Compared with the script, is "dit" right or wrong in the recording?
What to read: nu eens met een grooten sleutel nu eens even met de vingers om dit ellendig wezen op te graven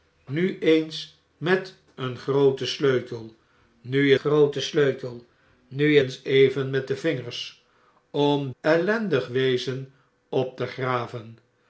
wrong